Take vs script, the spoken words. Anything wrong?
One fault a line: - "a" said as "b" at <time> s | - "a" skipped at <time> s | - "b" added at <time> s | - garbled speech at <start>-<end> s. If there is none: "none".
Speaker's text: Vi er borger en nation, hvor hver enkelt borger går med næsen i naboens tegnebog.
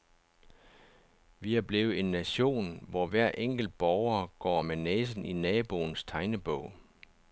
- "borger" said as "blevet" at 1.6 s